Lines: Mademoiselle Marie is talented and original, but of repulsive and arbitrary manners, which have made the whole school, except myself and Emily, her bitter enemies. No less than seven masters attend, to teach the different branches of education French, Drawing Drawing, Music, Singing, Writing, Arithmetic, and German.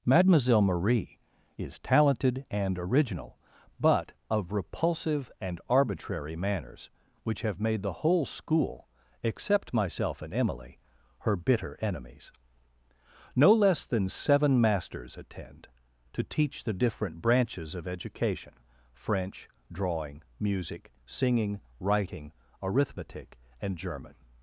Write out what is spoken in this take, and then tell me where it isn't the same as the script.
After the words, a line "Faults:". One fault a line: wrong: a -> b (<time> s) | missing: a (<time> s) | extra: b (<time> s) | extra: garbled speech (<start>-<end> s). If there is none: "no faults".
Mademoiselle Marie is talented and original, but of repulsive and arbitrary manners, which have made the whole school, except myself and Emily, her bitter enemies. No less than seven masters attend, to teach the different branches of education French, Drawing, Music, Singing, Writing, Arithmetic, and German.
Faults:
missing: Drawing (20.2 s)